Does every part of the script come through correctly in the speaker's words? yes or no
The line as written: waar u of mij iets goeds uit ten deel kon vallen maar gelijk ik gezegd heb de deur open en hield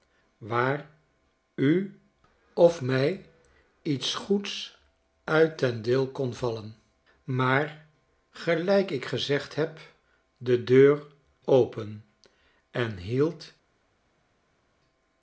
yes